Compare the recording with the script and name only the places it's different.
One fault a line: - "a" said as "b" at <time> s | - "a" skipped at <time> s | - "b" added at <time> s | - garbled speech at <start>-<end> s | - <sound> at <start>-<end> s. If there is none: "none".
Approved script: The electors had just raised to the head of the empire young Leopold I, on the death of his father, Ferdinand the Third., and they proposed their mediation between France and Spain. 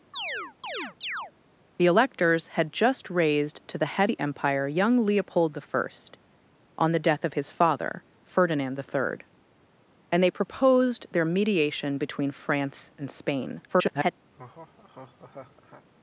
- chirp at 0.1-1.3 s
- "of" skipped at 4.1 s
- garbled speech at 13.7-14.1 s
- laugh at 14.3-15.9 s